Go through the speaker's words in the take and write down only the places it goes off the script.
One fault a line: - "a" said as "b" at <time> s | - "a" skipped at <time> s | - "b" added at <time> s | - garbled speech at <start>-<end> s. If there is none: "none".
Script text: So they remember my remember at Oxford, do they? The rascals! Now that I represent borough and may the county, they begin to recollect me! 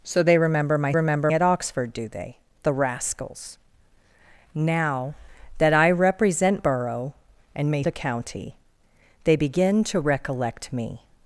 none